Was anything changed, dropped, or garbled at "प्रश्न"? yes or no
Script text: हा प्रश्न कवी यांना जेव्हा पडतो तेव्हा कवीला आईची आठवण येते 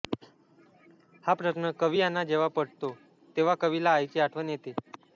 no